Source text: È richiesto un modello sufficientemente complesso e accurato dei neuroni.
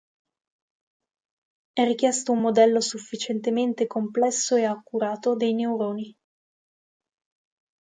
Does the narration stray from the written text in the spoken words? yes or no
no